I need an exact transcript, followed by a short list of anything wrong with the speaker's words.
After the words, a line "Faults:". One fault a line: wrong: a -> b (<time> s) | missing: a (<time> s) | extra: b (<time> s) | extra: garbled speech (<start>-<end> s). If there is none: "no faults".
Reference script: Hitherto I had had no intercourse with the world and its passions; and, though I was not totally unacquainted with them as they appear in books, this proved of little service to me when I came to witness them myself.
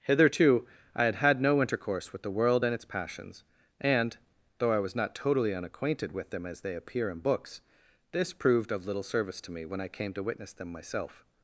Hitherto I had had no intercourse with the world and its passions; and, though I was not totally unacquainted with them as they appear in books, this proved of little service to me when I came to witness them myself.
Faults:
no faults